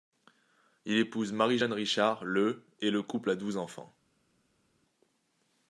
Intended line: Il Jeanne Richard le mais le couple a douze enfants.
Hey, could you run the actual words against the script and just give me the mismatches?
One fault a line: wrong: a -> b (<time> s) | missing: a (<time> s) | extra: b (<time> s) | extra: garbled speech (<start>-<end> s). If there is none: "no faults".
extra: épouse Marie (1.0 s)
wrong: mais -> et (2.8 s)